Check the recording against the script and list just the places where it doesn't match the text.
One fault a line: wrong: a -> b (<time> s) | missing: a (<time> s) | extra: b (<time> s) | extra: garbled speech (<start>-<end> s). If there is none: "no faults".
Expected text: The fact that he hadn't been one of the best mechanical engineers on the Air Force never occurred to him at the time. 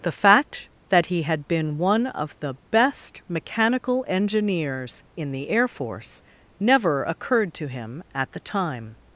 wrong: hadn't -> had (1.2 s)
wrong: on -> in (5.2 s)